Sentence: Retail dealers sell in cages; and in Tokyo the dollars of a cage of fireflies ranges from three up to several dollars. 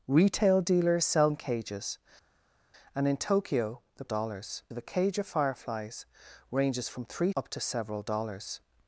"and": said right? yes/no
yes